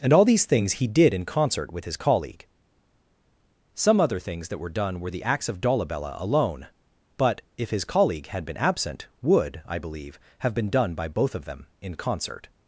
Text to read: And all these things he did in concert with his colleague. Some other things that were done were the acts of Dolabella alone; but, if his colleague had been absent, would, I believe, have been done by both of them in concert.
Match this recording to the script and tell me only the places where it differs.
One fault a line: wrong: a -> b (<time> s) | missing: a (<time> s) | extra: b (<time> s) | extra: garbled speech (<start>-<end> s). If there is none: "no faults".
no faults